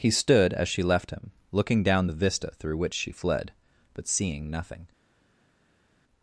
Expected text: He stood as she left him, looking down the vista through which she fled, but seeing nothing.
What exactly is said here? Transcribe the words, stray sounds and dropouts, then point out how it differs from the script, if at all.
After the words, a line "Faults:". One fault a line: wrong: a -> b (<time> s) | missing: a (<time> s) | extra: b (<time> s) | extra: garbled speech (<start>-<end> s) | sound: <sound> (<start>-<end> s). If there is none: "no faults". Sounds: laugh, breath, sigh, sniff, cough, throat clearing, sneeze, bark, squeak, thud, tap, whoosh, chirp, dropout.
He stood as she left him, looking down the vista through which she fled, but seeing nothing.
Faults:
no faults